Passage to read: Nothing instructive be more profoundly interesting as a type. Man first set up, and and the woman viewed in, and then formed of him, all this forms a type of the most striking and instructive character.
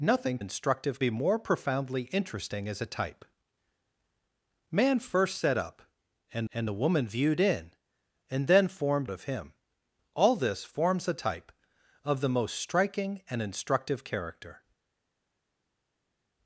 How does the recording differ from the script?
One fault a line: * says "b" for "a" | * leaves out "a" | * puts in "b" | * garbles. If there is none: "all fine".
all fine